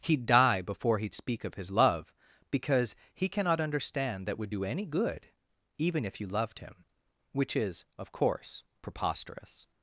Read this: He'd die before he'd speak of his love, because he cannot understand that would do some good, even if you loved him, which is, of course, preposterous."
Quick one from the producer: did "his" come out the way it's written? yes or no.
yes